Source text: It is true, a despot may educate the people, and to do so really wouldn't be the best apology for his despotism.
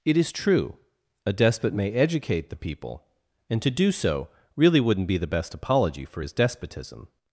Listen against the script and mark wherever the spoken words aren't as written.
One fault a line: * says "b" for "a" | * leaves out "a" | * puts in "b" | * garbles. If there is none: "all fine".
all fine